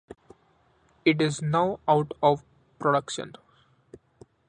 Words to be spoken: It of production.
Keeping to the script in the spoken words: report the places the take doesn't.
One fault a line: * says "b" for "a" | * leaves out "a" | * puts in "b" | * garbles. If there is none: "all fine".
* puts in "is now out"